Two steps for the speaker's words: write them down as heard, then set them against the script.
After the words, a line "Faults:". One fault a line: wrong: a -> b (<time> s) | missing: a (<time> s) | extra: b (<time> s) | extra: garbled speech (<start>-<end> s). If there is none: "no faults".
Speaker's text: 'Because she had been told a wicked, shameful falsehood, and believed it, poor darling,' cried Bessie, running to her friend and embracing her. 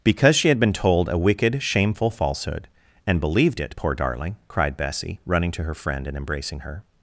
'Because she had been told a wicked, shameful falsehood, and believed it, poor darling,' cried Bessie, running to her friend and embracing her.
Faults:
no faults